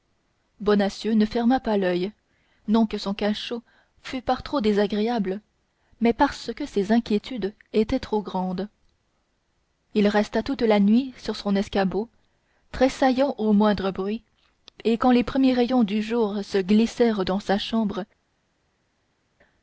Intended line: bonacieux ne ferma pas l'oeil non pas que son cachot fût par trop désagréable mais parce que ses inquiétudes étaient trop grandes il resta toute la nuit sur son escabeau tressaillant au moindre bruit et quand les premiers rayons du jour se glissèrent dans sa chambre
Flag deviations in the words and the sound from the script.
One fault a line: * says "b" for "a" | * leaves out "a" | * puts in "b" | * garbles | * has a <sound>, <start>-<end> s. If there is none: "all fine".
* leaves out "pas"